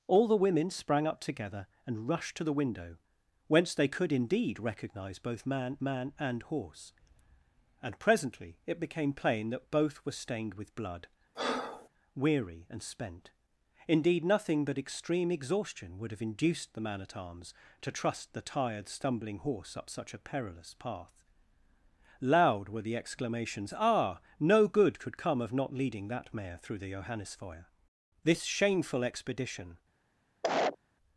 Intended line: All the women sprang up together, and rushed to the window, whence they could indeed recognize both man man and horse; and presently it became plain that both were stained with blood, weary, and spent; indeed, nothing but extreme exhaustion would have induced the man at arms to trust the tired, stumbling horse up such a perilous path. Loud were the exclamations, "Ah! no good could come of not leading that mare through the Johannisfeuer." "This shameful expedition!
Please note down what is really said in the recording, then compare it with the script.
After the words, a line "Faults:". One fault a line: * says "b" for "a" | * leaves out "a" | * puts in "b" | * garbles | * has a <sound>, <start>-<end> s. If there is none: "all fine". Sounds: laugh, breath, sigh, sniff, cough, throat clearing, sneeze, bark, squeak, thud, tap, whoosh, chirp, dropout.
All the women sprang up together, and rushed to the window, whence they could indeed recognize both man man and horse; and presently it became plain that both were stained with blood, weary, and spent; indeed, nothing but extreme exhaustion would have induced the man at arms to trust the tired, stumbling horse up such a perilous path. Loud were the exclamations, "Ah! no good could come of not leading that mare through the Johannisfeuer." "This shameful expedition!
Faults:
* has a breath, 11.3-11.9 s
* has a cough, 30.4-30.8 s